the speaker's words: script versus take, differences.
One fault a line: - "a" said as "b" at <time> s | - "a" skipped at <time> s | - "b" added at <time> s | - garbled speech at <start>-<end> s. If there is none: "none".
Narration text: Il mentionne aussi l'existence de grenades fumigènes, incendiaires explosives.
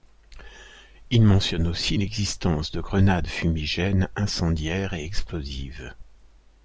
- "et" added at 4.9 s